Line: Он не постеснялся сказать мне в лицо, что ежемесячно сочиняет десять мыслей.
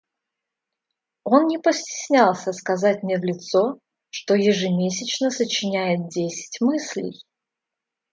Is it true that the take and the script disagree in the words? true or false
false